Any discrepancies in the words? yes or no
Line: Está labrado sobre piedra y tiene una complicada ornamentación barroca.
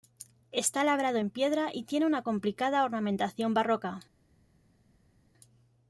yes